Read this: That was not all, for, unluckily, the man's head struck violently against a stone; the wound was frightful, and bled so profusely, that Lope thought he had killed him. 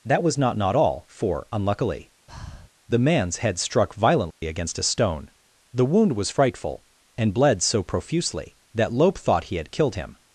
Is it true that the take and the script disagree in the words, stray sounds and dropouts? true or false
true